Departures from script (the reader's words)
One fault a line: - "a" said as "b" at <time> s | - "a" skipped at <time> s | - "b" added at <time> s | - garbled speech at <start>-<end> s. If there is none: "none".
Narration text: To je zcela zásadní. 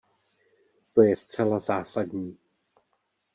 none